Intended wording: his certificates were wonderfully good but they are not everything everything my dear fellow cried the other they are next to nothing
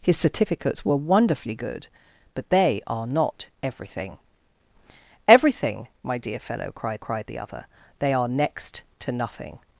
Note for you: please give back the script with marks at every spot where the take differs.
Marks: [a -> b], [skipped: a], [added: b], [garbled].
his certificates were wonderfully good but they are not everything everything my dear fellow cried [added: cried] the other they are next to nothing